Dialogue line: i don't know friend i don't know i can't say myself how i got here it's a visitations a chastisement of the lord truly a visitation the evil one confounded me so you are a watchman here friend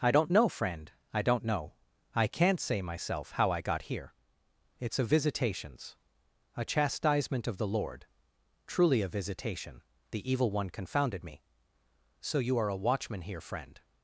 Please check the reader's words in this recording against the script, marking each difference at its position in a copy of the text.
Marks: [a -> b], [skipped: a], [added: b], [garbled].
i don't know friend i don't know i can't say myself how i got here it's a visitations a chastisement of the lord truly a visitation the evil one confounded me so you are a watchman here friend